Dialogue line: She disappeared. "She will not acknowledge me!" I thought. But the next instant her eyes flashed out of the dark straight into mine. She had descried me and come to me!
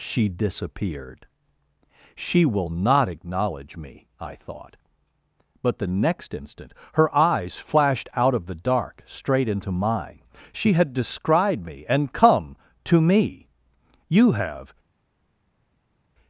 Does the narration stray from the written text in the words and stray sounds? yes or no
yes